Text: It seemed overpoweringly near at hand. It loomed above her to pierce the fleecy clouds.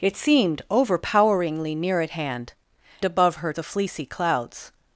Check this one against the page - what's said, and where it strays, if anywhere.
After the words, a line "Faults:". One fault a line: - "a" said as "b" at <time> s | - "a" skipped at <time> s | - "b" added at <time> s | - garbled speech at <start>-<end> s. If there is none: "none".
It seemed overpoweringly near at hand. Above her the fleecy clouds.
Faults:
- "It loomed" skipped at 2.5 s
- "to pierce" skipped at 3.5 s